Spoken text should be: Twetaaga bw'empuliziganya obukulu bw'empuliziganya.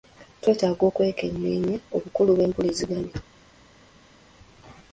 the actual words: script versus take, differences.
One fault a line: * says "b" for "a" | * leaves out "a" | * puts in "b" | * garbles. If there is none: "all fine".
* says "okwekenneenya" for "bw'empuliziganya"